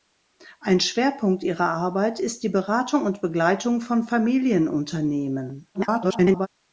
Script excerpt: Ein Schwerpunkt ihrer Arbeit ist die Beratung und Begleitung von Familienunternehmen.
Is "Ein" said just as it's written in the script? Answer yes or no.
yes